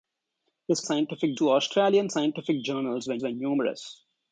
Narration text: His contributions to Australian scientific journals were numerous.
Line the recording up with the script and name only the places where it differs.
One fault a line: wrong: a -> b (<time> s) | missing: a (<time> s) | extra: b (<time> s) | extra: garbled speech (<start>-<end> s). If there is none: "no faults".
wrong: contributions -> scientific (0.8 s)
extra: were (3.2 s)